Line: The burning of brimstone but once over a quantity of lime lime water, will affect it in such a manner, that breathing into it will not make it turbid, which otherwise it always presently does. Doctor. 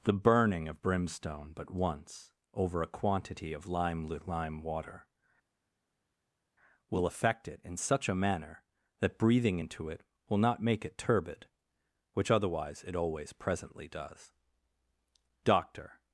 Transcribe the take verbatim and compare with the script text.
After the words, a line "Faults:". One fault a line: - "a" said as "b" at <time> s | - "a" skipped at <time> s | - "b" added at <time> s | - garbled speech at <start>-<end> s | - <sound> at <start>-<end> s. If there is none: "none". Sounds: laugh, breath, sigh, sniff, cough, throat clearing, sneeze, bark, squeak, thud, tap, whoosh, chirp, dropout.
The burning of brimstone but once over a quantity of lime lime water, will affect it in such a manner, that breathing into it will not make it turbid, which otherwise it always presently does. Doctor.
Faults:
none